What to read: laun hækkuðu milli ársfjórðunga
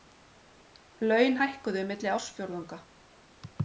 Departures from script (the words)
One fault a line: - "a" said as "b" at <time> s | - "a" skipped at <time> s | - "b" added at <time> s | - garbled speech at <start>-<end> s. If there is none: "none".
none